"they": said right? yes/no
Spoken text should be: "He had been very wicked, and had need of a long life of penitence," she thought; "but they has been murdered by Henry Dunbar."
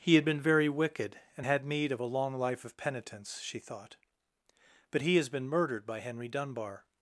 no